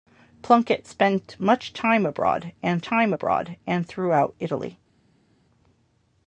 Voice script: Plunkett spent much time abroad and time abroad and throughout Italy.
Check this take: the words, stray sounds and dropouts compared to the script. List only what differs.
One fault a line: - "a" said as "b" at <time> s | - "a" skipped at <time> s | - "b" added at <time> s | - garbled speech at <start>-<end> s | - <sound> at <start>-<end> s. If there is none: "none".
none